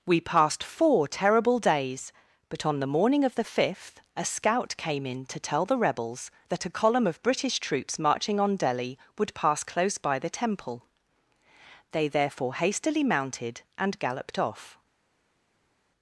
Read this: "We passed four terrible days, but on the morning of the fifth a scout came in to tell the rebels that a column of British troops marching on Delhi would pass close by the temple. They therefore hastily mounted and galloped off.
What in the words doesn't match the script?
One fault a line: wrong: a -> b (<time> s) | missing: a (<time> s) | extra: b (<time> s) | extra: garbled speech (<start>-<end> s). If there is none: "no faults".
no faults